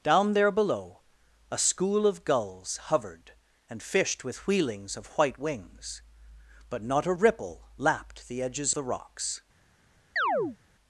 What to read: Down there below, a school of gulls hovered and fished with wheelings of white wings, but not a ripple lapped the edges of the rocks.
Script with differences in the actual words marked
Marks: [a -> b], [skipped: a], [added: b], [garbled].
Down there below, a school of gulls hovered and fished with wheelings of white wings, but not a ripple lapped the edges [skipped: of] the rocks.